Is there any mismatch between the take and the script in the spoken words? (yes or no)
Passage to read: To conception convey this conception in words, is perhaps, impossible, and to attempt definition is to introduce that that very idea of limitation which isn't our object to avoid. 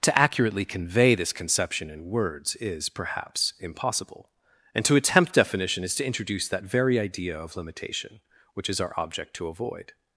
yes